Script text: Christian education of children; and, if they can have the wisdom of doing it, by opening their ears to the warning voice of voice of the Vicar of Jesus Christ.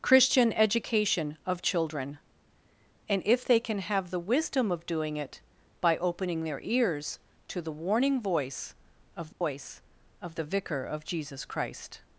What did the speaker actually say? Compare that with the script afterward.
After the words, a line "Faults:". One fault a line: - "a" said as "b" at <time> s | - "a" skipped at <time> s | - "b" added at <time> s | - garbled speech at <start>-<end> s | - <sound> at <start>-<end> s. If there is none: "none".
Christian education of children; and, if they can have the wisdom of doing it, by opening their ears to the warning voice of voice of the Vicar of Jesus Christ.
Faults:
- dropout at 9.3-9.4 s